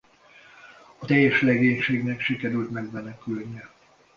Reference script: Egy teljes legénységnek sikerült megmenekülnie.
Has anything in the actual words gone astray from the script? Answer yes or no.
yes